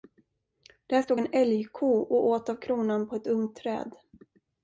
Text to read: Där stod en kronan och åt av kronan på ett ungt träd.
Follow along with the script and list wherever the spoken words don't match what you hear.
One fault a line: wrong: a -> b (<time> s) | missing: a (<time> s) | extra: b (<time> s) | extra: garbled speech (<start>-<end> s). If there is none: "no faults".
wrong: kronan -> älgko (1.3 s)